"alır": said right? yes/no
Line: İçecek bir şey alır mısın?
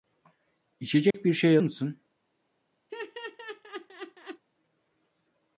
no